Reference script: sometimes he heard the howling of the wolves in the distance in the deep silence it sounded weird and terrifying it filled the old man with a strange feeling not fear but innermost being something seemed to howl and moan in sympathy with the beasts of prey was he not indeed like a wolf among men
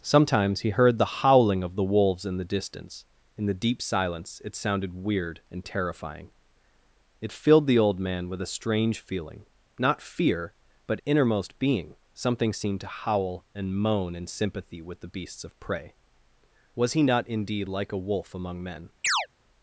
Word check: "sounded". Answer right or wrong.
right